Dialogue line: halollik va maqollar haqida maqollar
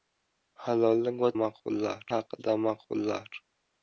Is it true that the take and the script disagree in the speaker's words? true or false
false